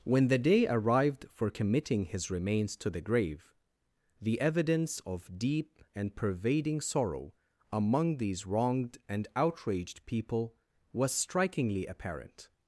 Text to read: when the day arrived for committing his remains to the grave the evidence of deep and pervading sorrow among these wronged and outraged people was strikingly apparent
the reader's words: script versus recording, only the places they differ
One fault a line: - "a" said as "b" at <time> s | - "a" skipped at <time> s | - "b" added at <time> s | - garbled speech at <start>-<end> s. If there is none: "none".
none